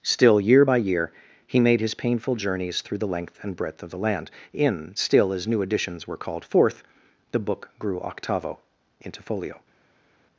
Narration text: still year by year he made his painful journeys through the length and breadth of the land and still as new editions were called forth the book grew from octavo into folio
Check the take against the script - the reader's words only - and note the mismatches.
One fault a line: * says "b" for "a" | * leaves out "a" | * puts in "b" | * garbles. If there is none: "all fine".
* says "in" for "and"
* leaves out "from"